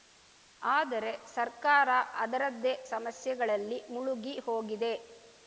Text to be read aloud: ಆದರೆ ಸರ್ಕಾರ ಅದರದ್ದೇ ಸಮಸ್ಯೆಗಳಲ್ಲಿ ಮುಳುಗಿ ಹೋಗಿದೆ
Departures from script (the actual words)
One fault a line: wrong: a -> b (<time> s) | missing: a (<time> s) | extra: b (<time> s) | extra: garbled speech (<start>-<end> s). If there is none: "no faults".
no faults